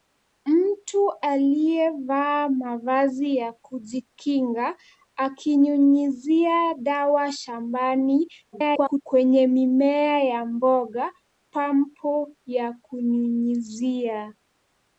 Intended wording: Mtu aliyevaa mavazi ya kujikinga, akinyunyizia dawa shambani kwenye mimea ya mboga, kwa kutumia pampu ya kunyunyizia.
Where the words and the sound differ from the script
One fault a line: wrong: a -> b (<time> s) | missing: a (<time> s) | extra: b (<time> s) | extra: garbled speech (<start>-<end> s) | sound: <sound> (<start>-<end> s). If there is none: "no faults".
extra: garbled speech (8.5-9.0 s)
missing: kwa kutumia (11.1 s)